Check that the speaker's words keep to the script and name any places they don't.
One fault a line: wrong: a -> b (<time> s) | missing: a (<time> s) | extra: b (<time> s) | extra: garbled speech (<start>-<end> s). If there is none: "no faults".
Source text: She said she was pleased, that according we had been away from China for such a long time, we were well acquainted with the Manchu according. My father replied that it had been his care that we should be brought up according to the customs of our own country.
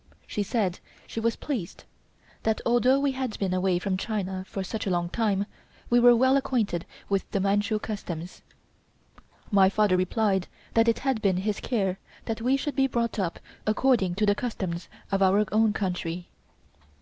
wrong: according -> although (2.6 s)
wrong: according -> customs (7.8 s)